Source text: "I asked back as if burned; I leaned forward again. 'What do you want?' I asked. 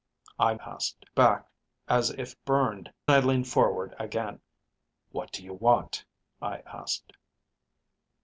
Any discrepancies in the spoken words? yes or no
no